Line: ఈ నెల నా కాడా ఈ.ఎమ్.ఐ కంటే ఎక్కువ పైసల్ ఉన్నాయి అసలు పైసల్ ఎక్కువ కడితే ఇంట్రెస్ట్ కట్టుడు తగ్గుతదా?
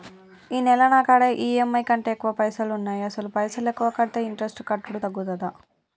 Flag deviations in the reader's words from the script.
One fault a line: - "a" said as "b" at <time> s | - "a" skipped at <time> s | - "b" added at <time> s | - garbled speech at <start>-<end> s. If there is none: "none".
none